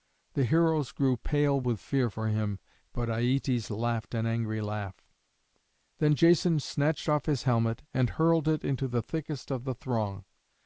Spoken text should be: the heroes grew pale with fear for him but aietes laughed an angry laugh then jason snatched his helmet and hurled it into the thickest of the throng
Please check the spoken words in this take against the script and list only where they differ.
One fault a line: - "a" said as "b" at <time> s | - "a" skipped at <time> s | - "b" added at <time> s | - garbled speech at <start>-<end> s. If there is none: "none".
- "off" added at 7.1 s